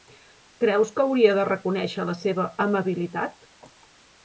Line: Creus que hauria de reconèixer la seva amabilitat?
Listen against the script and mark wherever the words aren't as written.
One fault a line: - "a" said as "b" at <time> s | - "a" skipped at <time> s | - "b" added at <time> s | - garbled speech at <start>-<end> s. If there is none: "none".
none